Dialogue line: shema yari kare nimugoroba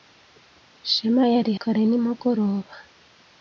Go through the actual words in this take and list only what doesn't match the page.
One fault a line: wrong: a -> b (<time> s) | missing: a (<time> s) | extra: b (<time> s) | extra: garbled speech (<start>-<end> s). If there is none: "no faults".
no faults